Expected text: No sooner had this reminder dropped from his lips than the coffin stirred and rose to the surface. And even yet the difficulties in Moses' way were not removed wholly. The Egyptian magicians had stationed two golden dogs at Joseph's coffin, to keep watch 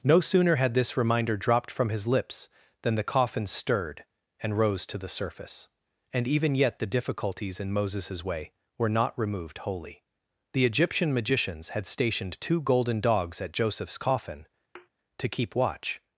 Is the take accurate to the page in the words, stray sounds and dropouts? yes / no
no